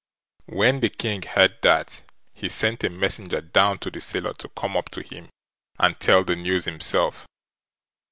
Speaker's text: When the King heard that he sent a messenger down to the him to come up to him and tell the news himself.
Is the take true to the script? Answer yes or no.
no